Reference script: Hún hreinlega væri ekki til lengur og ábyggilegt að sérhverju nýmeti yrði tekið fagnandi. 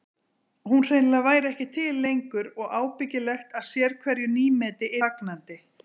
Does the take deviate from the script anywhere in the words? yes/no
yes